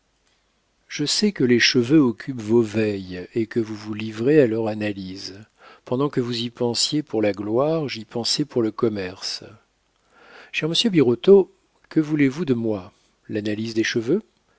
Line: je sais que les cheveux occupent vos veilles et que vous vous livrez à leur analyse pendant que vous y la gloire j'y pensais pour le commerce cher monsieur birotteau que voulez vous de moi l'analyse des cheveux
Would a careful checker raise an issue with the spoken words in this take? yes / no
yes